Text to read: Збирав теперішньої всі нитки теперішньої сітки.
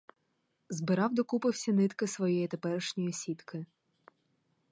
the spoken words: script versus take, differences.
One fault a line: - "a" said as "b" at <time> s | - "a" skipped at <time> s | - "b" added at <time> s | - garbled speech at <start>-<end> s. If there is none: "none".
- "теперішньої" said as "докупи" at 1.1 s
- "своєї" added at 2.1 s